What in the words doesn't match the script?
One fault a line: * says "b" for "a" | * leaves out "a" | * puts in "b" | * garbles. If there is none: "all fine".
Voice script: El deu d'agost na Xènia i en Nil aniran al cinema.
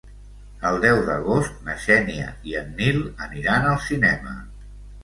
all fine